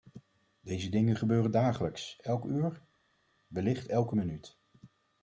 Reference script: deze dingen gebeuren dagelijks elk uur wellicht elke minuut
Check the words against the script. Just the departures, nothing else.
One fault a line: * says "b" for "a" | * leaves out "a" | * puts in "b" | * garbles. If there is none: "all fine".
all fine